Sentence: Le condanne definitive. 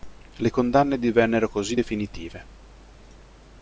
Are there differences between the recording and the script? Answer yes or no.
yes